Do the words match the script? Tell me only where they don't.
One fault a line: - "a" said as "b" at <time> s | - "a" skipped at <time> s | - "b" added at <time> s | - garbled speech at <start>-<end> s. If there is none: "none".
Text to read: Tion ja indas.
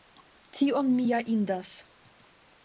- "mi" added at 0.9 s